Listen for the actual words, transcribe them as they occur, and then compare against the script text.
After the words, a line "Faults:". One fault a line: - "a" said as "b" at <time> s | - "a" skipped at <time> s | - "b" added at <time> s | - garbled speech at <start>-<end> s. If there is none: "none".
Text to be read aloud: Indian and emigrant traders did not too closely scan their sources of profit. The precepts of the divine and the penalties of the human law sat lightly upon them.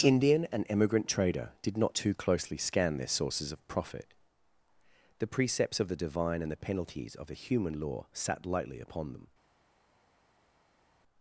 Indian and emigrant trader did not too closely scan their sources of profit. The precepts of the divine and the penalties of the human law sat lightly upon them.
Faults:
- "traders" said as "trader" at 1.1 s